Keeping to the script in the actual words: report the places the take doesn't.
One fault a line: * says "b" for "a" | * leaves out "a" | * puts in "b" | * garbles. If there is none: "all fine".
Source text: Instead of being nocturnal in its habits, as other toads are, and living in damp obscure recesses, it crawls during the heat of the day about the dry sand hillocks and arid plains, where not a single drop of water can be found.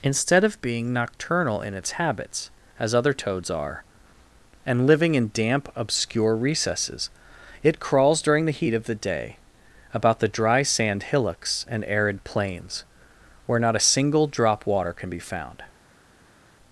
* leaves out "of"